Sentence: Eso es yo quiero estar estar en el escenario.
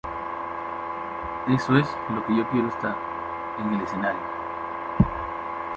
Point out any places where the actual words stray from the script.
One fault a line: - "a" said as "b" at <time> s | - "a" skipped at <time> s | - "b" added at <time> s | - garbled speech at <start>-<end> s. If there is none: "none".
- "lo que" added at 2.1 s
- "estar" skipped at 2.9 s